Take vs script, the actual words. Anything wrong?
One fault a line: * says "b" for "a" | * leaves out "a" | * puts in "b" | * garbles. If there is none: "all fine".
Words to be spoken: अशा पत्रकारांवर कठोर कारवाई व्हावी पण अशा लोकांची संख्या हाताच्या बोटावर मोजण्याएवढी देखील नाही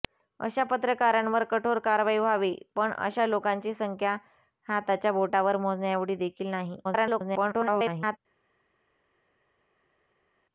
* garbles